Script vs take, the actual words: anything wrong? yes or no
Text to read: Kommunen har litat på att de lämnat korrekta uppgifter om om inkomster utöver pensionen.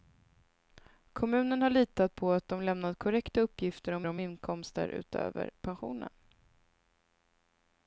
no